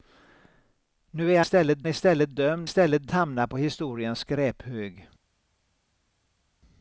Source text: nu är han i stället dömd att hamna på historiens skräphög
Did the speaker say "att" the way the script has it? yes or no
no